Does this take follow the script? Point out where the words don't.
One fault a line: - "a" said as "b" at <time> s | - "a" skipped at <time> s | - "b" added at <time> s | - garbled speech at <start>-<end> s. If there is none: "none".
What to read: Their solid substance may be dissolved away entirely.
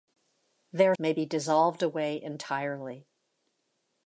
- "solid substance" skipped at 0.9 s